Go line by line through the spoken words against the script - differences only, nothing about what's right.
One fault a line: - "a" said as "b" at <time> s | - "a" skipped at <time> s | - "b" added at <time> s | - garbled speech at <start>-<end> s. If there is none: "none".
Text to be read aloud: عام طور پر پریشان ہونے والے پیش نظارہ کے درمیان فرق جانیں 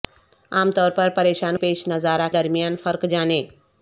- "ہونے والے" skipped at 1.6 s
- "کے" skipped at 2.3 s